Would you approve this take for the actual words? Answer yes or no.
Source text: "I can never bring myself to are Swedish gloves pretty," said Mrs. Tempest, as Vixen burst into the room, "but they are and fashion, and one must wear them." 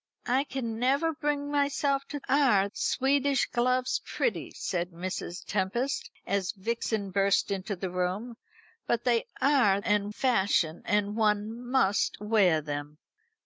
yes